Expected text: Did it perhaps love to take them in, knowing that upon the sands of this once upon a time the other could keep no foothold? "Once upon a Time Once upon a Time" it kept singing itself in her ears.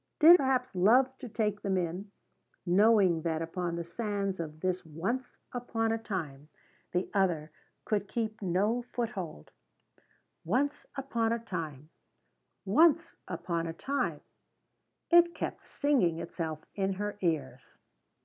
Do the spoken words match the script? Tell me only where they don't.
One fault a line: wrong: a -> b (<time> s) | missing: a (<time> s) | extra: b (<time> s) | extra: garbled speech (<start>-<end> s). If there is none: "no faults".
missing: it (0.3 s)